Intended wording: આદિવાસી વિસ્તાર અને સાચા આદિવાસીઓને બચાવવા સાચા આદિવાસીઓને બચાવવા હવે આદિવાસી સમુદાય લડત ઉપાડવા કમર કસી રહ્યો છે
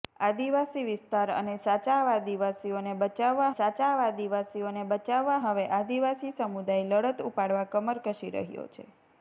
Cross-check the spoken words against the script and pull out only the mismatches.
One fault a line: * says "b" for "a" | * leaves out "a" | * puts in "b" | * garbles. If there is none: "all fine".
all fine